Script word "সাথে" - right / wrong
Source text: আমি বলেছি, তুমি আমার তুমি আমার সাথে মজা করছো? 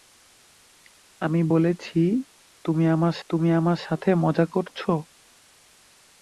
right